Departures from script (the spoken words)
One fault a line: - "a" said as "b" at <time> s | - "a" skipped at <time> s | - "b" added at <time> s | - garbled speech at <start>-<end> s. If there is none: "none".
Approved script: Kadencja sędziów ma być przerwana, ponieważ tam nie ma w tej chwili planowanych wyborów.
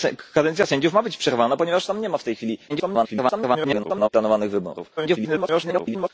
- garbled speech at 2.7-4.1 s
- garbled speech at 5.0-6.1 s